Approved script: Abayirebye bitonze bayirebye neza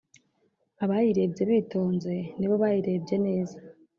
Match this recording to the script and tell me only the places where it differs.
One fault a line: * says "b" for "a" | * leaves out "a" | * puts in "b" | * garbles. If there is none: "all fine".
* puts in "nibo"